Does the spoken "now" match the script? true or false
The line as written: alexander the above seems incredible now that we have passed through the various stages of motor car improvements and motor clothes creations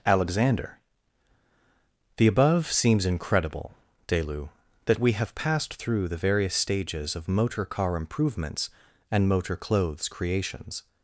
false